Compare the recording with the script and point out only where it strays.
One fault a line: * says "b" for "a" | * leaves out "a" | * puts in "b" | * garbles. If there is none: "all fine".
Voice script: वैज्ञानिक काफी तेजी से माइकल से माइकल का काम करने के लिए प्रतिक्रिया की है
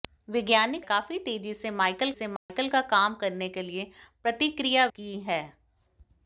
all fine